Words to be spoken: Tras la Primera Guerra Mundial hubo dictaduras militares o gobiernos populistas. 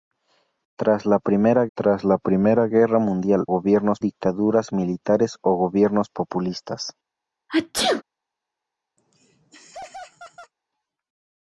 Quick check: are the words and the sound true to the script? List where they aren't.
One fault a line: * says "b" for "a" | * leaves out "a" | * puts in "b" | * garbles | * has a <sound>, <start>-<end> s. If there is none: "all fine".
* puts in "tras la Primera"
* says "gobiernos" for "hubo"
* has a sneeze, 7.5-8.0 s
* has a laugh, 9.0-10.5 s